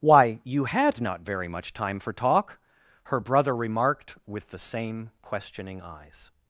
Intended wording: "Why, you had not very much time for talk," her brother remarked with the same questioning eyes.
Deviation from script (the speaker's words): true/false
false